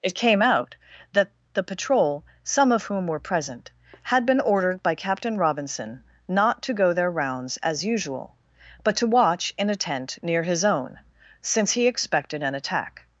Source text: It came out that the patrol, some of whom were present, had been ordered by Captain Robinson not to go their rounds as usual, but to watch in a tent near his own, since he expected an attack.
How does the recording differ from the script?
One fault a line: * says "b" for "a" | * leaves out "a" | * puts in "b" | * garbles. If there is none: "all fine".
all fine